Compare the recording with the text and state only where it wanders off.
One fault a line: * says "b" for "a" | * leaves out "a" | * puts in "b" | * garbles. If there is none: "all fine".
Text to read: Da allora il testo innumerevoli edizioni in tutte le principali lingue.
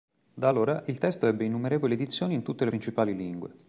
* puts in "ebbe"